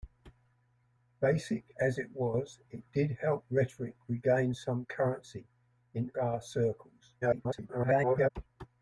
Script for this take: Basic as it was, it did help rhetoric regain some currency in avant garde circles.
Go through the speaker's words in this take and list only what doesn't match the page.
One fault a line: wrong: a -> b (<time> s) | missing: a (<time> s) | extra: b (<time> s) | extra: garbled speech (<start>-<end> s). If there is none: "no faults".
missing: avant (6.1 s)
extra: garbled speech (7.2-8.3 s)